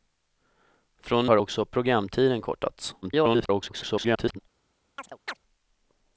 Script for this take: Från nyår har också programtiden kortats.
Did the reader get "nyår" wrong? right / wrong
wrong